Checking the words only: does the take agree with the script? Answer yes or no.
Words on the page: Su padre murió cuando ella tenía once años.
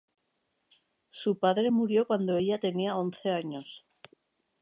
yes